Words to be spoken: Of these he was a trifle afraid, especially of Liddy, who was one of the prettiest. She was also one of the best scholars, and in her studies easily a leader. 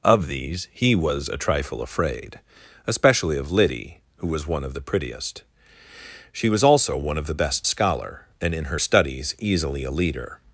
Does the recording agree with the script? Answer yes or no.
no